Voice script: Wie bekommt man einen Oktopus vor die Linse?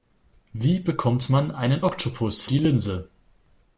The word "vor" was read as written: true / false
false